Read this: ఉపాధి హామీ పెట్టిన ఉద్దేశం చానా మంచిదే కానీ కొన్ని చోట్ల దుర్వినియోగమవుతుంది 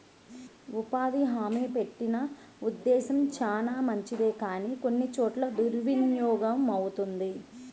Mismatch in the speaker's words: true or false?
false